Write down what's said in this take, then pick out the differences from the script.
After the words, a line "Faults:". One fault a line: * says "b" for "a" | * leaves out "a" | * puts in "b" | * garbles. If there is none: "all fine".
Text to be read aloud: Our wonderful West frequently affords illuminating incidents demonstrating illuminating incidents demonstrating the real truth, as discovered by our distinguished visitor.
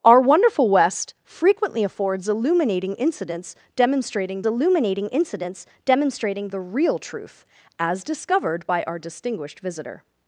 Our wonderful West frequently affords illuminating incidents demonstrating illuminating incidents demonstrating the real truth, as discovered by our distinguished visitor.
Faults:
all fine